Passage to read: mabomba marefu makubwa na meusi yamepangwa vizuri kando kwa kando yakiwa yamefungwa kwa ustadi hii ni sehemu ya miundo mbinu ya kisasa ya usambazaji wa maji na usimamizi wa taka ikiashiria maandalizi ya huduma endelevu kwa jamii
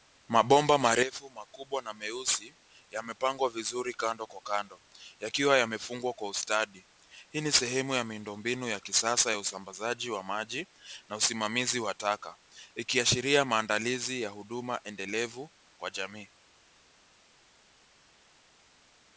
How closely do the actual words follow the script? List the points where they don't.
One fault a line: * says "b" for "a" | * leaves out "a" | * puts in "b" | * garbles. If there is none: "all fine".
all fine